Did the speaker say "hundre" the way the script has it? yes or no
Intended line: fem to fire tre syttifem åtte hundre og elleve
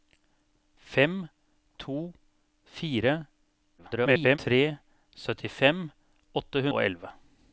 no